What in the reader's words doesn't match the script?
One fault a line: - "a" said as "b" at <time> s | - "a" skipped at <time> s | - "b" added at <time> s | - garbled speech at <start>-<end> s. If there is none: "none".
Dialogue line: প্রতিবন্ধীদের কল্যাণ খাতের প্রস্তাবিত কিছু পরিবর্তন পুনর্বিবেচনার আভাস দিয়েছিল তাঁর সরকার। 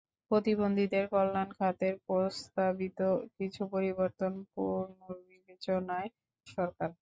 - "আভাস দিয়েছিল তাঁর" skipped at 6.1 s